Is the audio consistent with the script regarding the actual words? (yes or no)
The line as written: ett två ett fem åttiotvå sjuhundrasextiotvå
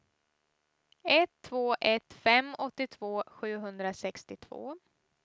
yes